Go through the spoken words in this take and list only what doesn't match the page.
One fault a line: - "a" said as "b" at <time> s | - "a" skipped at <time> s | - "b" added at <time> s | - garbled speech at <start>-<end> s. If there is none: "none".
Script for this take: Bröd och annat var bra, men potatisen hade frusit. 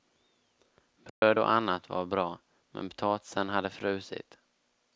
none